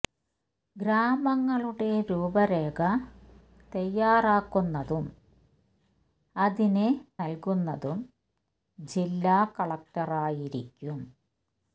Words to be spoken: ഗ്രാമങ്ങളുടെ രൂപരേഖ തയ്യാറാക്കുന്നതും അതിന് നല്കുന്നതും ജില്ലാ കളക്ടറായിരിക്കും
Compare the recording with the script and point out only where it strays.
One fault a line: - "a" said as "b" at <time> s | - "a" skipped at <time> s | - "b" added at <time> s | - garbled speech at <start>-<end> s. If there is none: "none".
none